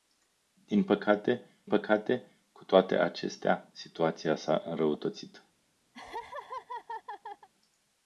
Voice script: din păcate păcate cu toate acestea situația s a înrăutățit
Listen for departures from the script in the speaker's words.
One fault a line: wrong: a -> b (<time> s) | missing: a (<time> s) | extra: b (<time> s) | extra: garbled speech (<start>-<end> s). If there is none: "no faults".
no faults